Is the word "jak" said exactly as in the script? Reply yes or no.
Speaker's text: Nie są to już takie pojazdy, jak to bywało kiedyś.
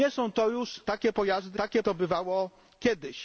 no